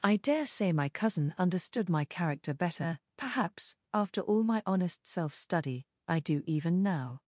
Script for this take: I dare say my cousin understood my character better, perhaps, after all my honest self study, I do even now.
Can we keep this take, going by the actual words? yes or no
yes